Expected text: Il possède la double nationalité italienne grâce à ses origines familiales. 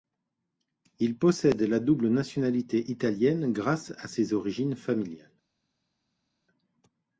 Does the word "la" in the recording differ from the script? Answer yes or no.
no